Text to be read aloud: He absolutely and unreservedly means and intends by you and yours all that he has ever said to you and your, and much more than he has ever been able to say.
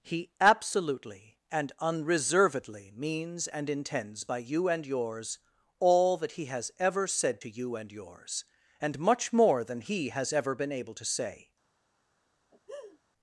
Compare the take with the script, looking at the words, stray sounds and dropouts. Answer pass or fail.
fail